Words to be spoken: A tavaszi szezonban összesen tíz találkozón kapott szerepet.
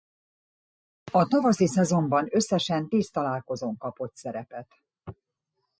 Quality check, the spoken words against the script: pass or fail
pass